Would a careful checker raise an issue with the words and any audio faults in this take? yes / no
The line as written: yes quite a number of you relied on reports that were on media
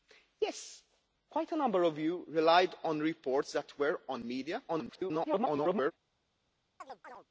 yes